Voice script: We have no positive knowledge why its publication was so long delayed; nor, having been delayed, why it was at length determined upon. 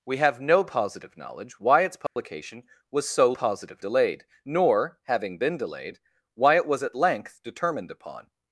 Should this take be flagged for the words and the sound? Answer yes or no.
yes